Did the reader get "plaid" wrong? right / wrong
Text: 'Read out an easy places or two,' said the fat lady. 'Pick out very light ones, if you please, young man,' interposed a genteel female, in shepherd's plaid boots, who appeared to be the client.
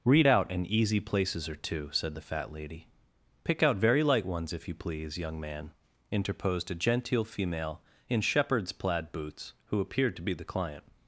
right